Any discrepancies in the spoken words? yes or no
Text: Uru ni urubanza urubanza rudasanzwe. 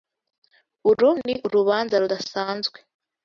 yes